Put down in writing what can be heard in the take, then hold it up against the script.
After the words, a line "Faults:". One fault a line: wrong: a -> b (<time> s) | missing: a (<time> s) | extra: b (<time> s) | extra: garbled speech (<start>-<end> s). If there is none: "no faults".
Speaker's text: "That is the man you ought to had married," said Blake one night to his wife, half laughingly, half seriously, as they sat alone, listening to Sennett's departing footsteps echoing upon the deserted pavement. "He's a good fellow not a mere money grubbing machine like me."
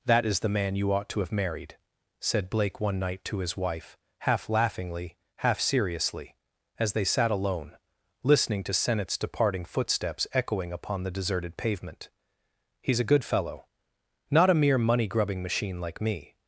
"That is the man you ought to have married," said Blake one night to his wife, half laughingly, half seriously, as they sat alone, listening to Sennett's departing footsteps echoing upon the deserted pavement. "He's a good fellow not a mere money grubbing machine like me."
Faults:
wrong: had -> have (1.2 s)